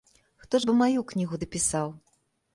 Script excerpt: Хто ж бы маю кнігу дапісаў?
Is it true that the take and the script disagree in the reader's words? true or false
false